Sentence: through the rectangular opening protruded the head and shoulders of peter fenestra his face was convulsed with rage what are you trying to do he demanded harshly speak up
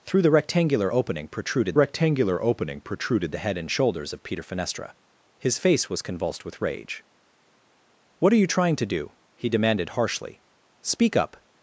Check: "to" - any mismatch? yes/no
no